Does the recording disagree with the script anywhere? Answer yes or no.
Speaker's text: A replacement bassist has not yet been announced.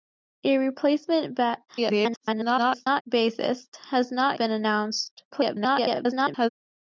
yes